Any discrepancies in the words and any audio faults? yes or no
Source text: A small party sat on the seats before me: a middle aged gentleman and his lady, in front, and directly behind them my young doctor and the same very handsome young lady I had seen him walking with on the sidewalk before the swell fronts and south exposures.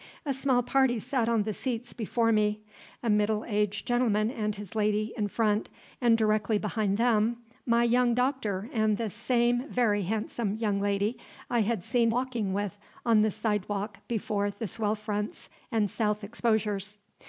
yes